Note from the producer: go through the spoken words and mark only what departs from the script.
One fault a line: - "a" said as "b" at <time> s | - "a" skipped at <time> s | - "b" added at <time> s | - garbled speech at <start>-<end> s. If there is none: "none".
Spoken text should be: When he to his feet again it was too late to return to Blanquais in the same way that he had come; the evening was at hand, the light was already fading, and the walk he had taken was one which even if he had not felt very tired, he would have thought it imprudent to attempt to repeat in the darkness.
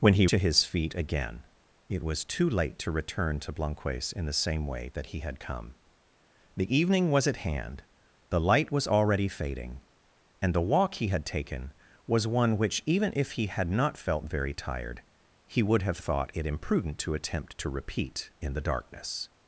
none